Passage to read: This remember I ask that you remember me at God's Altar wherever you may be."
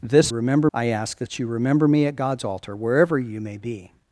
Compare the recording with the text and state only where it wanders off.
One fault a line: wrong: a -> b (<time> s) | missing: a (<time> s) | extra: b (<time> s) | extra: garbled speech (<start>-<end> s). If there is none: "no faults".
no faults